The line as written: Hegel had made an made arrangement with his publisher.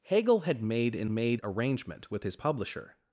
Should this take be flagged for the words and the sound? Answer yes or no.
no